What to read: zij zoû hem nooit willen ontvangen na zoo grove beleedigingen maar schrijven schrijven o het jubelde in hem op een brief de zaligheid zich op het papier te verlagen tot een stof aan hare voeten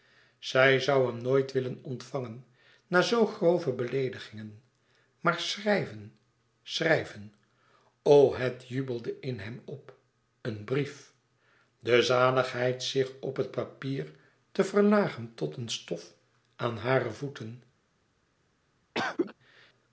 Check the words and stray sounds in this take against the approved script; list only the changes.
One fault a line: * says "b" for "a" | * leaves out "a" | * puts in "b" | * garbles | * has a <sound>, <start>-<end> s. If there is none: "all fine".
* has a cough, 18.9-19.3 s